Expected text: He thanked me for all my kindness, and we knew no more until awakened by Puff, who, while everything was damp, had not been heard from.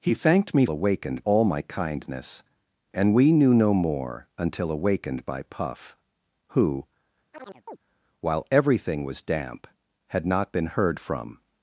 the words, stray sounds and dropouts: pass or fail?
fail